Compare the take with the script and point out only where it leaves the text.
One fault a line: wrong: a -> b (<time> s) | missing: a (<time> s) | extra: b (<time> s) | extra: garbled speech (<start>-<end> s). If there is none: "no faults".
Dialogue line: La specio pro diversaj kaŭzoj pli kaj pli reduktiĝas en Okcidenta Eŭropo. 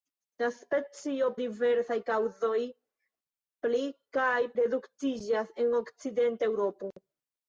missing: pro (1.3 s)
missing: pli (4.4 s)